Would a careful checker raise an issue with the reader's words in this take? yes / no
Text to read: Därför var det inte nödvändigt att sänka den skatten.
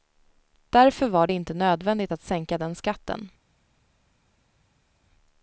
no